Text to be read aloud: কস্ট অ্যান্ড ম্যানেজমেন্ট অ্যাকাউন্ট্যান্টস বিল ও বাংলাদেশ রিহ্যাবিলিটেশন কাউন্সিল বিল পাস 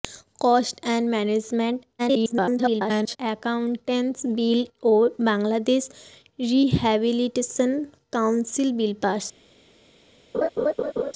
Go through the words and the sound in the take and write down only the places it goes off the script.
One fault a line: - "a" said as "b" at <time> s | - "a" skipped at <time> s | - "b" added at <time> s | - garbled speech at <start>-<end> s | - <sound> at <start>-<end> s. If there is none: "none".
- garbled speech at 2.0-3.2 s
- laugh at 10.3-11.1 s